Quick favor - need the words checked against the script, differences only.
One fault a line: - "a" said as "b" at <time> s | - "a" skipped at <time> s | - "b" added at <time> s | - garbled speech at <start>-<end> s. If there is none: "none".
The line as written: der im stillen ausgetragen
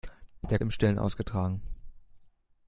none